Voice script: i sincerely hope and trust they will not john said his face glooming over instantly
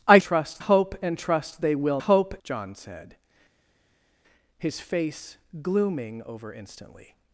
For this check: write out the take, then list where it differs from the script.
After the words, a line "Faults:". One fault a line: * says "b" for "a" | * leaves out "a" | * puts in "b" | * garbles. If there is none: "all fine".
i trust hope and trust they will hope john said his face glooming over instantly
Faults:
* says "trust" for "sincerely"
* says "hope" for "not"